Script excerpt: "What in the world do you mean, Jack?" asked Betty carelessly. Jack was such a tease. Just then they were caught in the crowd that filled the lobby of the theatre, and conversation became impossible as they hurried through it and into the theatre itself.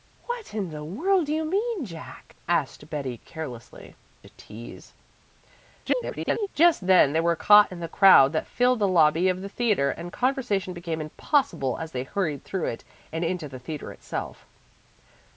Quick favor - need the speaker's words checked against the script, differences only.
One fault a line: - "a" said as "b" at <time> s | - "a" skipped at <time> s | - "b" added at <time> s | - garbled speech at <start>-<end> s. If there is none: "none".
- "Jack was such" skipped at 4.0 s
- garbled speech at 5.8-6.5 s